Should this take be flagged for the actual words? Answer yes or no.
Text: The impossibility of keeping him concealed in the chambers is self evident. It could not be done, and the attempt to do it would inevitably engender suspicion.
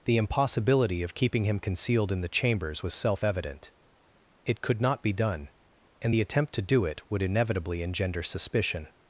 yes